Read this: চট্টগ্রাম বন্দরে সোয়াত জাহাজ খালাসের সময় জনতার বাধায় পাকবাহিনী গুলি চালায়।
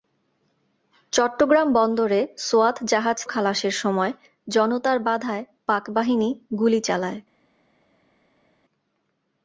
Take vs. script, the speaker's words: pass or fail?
pass